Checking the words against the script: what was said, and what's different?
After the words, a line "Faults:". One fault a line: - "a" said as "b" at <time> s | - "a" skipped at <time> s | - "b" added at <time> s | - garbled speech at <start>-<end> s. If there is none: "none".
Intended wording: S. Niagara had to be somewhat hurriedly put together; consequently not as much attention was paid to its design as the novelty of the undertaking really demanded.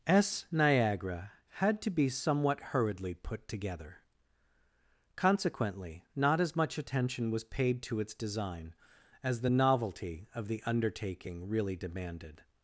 S. Niagara had to be somewhat hurriedly put together; consequently not as much attention was paid to its design as the novelty of the undertaking really demanded.
Faults:
none